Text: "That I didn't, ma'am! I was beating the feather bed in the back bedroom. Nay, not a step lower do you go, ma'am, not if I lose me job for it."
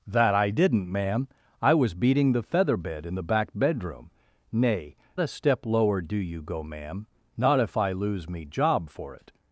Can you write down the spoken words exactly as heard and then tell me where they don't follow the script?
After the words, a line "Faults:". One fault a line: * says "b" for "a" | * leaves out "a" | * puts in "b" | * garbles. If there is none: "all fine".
"That I didn't, ma'am! I was beating the feather bed in the back bedroom. Nay, a step lower do you go, ma'am, not if I lose me job for it."
Faults:
* leaves out "not"